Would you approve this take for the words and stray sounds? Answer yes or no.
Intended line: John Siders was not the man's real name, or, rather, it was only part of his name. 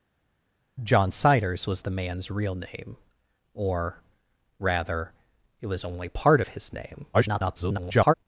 no